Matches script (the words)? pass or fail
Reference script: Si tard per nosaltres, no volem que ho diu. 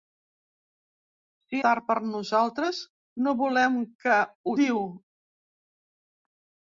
pass